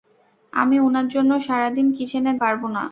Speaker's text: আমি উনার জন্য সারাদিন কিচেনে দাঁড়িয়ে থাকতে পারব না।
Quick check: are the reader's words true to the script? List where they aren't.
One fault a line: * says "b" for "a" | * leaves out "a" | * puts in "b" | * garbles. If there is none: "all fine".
* leaves out "দাঁড়িয়ে থাকতে"